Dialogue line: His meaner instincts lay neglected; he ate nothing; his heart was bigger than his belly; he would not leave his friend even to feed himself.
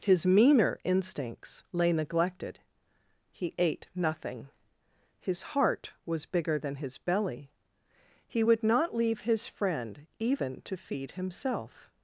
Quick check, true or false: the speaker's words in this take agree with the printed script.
true